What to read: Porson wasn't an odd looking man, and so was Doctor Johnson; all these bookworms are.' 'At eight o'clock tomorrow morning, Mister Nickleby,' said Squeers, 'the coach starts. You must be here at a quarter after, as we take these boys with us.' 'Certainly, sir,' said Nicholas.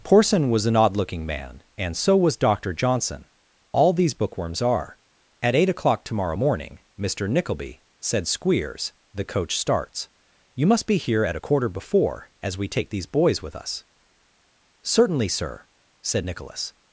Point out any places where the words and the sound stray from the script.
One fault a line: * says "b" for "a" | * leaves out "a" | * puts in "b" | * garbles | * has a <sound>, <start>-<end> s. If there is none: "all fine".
* says "was" for "wasn't"
* says "before" for "after"